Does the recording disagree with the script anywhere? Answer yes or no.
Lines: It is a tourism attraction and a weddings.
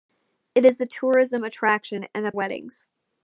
no